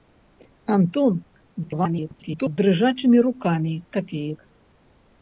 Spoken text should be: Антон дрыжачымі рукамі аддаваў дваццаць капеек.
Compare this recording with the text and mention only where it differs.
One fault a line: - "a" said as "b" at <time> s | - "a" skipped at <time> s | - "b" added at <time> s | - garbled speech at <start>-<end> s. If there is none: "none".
- garbled speech at 1.6-2.6 s
- "аддаваў дваццаць" skipped at 3.7 s